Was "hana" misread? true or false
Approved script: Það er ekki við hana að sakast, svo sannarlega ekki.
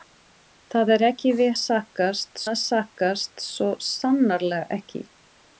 true